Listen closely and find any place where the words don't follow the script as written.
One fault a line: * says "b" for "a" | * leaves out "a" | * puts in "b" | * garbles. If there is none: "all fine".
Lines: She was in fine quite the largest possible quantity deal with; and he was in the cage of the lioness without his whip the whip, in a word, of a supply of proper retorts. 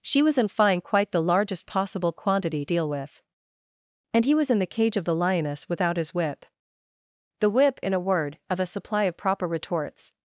all fine